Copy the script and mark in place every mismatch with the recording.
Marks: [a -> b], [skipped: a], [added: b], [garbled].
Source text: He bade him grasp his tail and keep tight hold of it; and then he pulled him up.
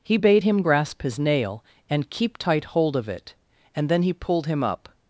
He bade him grasp his [tail -> nail] and keep tight hold of it; and then he pulled him up.